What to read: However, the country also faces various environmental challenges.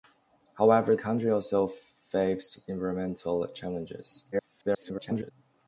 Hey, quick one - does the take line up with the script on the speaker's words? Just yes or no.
no